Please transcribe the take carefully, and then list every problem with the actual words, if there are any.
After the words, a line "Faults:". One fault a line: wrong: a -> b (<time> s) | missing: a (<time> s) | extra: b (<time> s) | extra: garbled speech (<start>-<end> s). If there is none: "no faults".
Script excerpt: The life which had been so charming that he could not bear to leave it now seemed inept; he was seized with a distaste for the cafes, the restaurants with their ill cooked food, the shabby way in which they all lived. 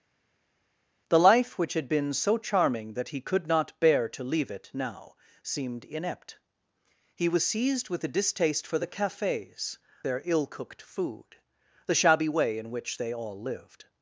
The life which had been so charming that he could not bear to leave it now seemed inept; he was seized with a distaste for the cafes, their ill cooked food, the shabby way in which they all lived.
Faults:
missing: the restaurants with (9.8 s)